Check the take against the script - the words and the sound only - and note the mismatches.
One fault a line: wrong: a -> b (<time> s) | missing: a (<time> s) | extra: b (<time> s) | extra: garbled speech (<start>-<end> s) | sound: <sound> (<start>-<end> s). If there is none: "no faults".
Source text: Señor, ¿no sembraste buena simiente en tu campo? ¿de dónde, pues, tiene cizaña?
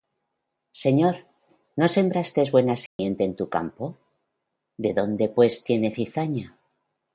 sound: dropout (2.9-3.0 s)